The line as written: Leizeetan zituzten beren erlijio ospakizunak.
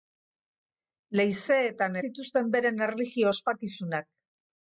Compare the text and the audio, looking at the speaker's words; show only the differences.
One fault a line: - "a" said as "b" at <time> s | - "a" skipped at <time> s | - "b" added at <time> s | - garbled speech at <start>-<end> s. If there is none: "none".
none